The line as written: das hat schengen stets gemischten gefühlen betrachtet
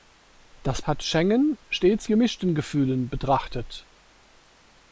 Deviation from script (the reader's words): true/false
false